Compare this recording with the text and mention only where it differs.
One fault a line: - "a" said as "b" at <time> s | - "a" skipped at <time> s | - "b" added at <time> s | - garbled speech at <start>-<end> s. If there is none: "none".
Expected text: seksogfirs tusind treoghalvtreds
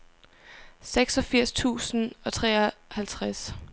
- "og" added at 2.2 s